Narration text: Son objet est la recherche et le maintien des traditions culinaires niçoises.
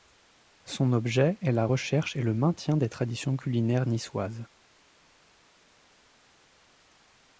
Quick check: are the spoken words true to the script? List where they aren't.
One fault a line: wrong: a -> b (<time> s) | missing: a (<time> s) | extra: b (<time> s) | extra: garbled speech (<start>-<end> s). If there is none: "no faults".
no faults